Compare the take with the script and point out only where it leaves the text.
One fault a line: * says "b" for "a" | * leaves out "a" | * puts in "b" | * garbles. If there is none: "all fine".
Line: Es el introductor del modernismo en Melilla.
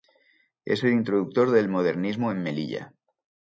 all fine